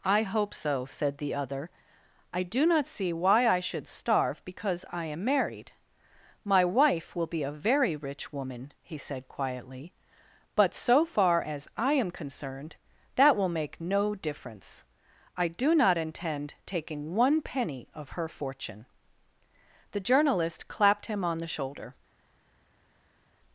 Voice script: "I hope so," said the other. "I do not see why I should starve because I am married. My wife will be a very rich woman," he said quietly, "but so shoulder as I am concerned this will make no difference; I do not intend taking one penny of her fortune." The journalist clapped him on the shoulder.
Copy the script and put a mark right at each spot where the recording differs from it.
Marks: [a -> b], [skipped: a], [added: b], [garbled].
"I hope so," said the other. "I do not see why I should starve because I am married. My wife will be a very rich woman," he said quietly, "but so [shoulder -> far] as I am concerned [this -> that] will make no difference; I do not intend taking one penny of her fortune." The journalist clapped him on the shoulder.